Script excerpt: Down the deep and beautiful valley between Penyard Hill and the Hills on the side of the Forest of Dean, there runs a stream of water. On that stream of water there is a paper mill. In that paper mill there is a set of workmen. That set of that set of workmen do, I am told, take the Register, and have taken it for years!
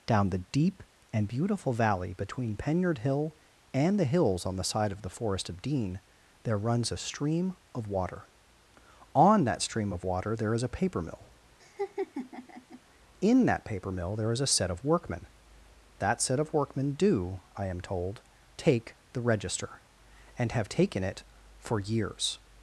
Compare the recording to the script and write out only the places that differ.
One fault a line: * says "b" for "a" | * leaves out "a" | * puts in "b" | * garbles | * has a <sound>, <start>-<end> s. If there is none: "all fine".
* has a laugh, 11.6-12.8 s
* leaves out "that set of"